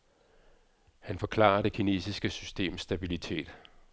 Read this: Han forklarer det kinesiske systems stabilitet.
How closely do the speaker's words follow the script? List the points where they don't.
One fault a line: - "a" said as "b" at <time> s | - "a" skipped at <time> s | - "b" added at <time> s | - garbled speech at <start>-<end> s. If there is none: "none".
none